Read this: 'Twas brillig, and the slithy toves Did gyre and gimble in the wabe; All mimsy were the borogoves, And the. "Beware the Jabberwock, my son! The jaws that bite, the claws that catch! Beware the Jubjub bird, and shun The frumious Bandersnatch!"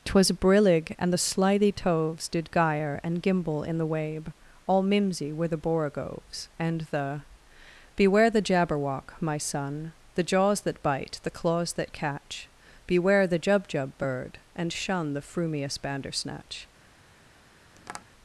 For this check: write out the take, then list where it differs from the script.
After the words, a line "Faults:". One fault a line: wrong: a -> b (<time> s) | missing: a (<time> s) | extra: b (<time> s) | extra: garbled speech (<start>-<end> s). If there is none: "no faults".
'Twas brillig, and the slithy toves Did gyre and gimble in the wabe; All mimsy were the borogoves, And the. "Beware the Jabberwock, my son! The jaws that bite, the claws that catch! Beware the Jubjub bird, and shun The frumious Bandersnatch!"
Faults:
no faults